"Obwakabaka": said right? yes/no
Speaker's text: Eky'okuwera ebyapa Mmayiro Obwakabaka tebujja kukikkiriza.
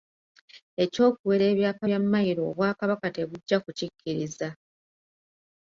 yes